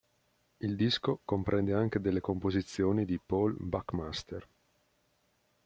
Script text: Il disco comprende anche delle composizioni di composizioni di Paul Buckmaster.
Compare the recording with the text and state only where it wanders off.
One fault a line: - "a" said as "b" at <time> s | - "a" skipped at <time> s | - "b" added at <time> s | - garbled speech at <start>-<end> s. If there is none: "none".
- "composizioni di" skipped at 3.2 s